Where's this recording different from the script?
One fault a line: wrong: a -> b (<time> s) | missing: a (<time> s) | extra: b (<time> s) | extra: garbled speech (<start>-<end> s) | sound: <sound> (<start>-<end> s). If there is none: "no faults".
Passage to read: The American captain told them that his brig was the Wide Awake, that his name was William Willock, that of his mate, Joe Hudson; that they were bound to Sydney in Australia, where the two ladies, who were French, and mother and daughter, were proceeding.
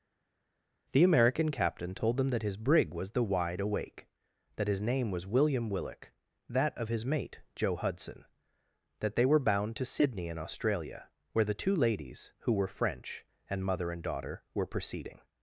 no faults